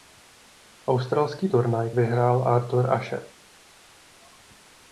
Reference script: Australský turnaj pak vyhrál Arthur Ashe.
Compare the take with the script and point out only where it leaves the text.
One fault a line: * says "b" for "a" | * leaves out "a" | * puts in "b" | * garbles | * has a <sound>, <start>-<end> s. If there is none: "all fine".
* leaves out "pak"